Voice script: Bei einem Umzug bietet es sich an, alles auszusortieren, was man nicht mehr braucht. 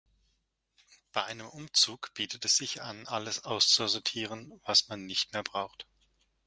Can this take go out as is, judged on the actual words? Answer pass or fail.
pass